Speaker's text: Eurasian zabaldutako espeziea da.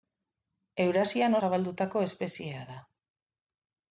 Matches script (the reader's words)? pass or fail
pass